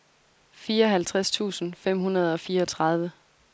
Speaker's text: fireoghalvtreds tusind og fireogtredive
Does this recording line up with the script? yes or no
no